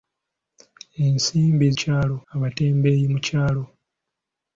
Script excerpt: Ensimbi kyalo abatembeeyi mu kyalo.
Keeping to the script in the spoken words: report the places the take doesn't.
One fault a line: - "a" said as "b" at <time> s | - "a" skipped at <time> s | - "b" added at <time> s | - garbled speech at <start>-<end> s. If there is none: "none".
none